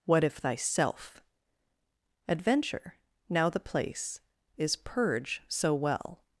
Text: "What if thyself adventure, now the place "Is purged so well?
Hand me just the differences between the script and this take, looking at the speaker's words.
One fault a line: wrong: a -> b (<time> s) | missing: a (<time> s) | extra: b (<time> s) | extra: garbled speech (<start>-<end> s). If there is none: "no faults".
wrong: purged -> purge (4.8 s)